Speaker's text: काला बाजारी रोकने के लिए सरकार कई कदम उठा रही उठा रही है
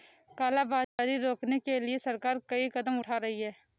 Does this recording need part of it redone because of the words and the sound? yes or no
yes